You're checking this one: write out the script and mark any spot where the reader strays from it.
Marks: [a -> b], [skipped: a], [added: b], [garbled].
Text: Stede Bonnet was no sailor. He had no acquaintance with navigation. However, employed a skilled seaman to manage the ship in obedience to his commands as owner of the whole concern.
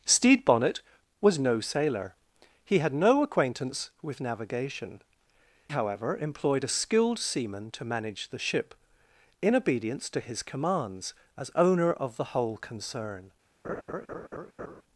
Stede Bonnet was no sailor. He had no acquaintance with navigation. However, employed a skilled seaman to manage the ship in obedience to his commands as owner of the whole concern.